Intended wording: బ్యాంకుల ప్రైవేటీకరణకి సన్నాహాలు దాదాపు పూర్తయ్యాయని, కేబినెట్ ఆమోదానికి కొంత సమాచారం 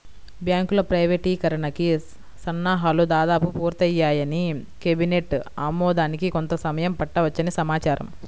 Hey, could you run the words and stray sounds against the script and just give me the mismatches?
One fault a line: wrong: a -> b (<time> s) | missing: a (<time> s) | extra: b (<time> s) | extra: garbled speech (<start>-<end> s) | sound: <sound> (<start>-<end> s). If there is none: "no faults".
extra: సమయం పట్టవచ్చని (6.7 s)